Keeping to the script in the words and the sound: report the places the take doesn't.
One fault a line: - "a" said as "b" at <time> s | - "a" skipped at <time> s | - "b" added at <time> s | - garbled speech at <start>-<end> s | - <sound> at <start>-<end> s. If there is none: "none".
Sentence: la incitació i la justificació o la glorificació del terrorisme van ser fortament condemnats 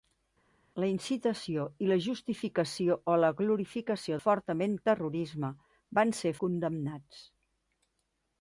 - "del" said as "fortament" at 4.2 s
- "fortament" skipped at 6.3 s